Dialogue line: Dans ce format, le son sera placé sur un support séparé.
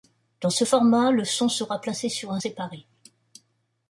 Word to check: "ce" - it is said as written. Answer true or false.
true